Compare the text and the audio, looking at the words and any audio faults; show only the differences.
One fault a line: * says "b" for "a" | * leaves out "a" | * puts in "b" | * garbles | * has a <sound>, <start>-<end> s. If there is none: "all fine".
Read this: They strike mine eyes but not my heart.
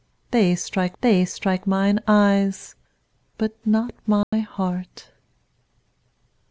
* puts in "they strike"
* has a dropout, 4.2-4.3 s